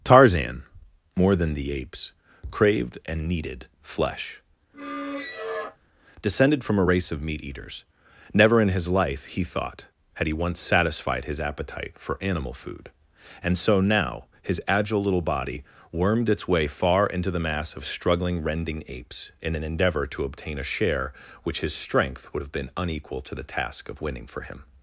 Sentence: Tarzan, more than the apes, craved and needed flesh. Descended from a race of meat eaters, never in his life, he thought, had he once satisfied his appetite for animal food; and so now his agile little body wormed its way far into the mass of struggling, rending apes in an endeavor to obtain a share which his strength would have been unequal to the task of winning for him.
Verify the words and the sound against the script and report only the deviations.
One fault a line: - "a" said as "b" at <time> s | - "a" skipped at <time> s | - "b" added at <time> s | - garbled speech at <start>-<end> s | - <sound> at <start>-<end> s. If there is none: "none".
- squeak at 4.7-5.8 s